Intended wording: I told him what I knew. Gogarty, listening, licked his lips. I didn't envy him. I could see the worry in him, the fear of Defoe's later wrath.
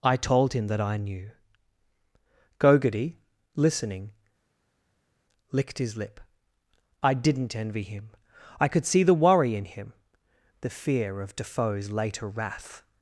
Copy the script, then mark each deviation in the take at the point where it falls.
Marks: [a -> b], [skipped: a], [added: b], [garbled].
I told him [what -> that] I knew. Gogarty, listening, licked his [lips. -> lip] I didn't envy him. I could see the worry in him, the fear of Defoe's later wrath.